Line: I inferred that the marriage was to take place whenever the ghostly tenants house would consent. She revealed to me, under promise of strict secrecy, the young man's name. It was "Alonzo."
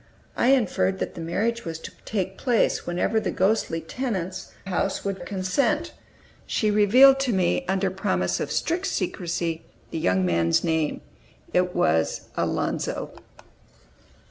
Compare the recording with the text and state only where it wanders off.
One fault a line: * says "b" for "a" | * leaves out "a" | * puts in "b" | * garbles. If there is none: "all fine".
all fine